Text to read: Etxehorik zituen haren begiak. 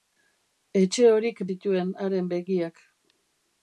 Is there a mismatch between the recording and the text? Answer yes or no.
no